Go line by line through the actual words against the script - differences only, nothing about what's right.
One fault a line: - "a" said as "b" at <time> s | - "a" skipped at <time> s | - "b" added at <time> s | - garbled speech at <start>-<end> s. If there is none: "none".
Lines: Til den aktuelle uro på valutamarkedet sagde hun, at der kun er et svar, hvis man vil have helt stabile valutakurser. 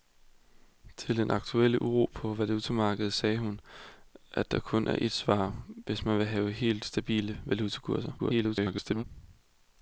- garbled speech at 8.2-9.0 s